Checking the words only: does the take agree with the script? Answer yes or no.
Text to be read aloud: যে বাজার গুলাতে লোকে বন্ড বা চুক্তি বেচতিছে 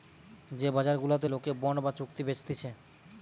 yes